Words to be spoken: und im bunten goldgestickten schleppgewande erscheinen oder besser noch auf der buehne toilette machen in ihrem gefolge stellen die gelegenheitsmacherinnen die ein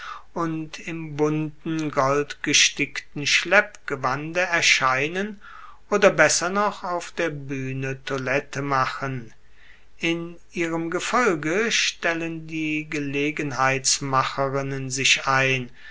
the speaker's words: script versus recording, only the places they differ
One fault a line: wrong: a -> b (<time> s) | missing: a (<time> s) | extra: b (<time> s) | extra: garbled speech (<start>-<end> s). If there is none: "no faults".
wrong: die -> sich (14.9 s)